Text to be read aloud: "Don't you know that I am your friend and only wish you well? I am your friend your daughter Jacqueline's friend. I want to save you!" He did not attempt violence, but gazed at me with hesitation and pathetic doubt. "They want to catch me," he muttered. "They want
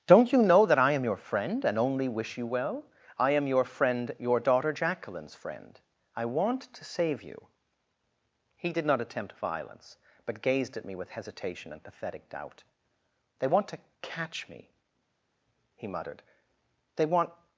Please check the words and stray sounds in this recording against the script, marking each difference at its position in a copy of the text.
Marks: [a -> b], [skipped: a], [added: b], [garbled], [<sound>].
"Don't you know that I am your friend and only wish you well? I am your friend your daughter Jacqueline's friend. I want to save you!" He did not attempt violence, but gazed at me with hesitation and pathetic doubt. "They want to catch me," he muttered. "They want